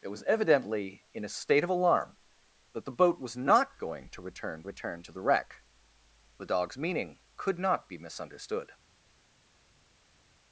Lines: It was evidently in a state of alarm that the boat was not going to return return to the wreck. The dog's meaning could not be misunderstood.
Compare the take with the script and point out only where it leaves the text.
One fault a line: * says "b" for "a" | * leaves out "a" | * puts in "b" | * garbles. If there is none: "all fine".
all fine